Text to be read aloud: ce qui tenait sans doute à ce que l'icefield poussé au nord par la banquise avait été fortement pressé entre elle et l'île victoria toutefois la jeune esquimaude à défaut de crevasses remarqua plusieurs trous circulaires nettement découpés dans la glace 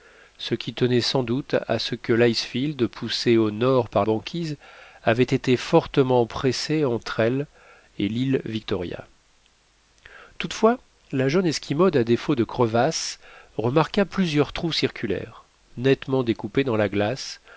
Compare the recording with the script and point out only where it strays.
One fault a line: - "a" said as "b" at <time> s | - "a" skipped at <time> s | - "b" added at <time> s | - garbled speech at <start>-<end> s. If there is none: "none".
- "la" skipped at 4.0 s